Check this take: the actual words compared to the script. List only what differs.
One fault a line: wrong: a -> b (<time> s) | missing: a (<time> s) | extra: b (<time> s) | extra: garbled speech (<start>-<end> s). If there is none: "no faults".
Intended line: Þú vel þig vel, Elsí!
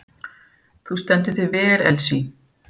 wrong: vel -> stendur (1.0 s)